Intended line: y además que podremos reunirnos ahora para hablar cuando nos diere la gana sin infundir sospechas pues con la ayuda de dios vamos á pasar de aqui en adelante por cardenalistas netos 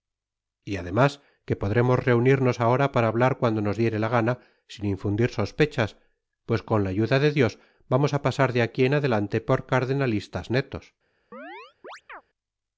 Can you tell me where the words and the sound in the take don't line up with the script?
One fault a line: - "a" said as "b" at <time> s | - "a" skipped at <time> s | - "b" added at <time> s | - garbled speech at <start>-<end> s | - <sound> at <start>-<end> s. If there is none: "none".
- chirp at 11.3-12.2 s